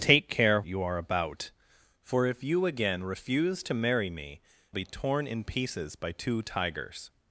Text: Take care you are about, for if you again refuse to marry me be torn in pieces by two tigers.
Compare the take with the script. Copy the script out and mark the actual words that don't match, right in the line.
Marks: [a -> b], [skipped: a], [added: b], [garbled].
Take care you are about, for if you again refuse to marry me be torn in pieces by two tigers.